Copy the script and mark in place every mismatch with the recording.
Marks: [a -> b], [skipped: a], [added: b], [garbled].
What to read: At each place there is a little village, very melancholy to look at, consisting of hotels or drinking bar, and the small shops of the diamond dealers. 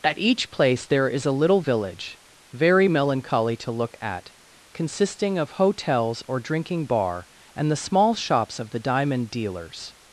At each place there is a little village, very melancholy to look at, consisting of hotels or drinking bar, and the small shops of the diamond dealers.